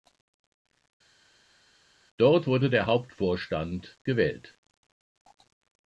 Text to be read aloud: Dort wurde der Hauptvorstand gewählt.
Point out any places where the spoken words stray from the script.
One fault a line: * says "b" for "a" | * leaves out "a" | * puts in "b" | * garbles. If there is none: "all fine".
all fine